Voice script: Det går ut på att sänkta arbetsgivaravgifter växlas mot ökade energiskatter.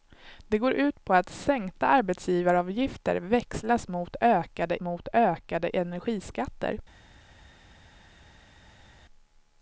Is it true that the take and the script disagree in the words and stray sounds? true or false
true